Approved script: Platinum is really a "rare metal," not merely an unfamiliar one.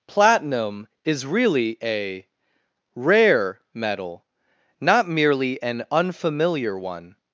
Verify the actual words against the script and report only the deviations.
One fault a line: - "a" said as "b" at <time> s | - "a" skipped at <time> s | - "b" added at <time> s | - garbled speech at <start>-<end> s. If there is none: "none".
none